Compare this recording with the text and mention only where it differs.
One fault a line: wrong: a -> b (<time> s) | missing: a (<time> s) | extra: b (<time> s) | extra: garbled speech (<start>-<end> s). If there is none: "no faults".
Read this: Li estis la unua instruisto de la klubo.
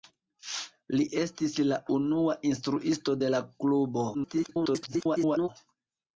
extra: garbled speech (4.1-5.5 s)